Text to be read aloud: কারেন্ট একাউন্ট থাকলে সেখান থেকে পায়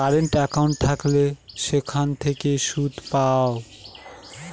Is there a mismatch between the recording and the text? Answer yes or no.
yes